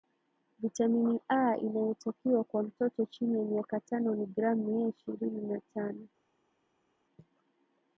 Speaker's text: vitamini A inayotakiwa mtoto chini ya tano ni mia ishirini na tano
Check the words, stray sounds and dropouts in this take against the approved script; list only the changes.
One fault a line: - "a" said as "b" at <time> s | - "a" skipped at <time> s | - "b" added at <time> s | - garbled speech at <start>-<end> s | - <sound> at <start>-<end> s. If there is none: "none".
- "kwa" added at 2.4 s
- "miaka" added at 3.4 s
- "gram" added at 4.2 s